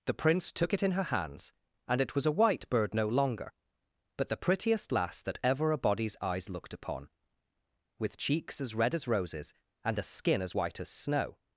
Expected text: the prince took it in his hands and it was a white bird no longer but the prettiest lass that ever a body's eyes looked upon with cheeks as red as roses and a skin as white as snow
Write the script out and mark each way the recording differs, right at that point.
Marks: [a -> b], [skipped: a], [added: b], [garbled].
the prince took it in [his -> her] hands and it was a white bird no longer but the prettiest lass that ever a body's eyes looked upon with cheeks as red as roses and a skin as white as snow